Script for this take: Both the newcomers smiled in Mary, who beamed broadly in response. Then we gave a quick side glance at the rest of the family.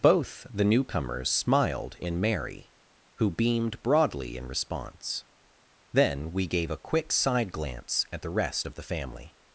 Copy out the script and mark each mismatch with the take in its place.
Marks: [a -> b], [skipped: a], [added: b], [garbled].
Both the newcomers smiled in Mary, who beamed broadly in response. Then we gave a quick side glance at the rest of the family.